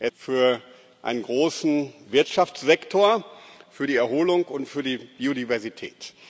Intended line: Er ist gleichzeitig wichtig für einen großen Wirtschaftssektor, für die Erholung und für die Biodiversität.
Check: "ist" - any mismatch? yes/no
yes